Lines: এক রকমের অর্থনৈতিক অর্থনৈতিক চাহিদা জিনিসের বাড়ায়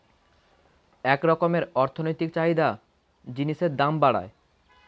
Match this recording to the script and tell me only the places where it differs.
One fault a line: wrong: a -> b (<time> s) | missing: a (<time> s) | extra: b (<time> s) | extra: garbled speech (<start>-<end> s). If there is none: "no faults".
missing: অর্থনৈতিক (2.3 s)
extra: দাম (3.8 s)